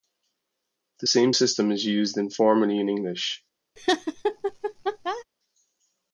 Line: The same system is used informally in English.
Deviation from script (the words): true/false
false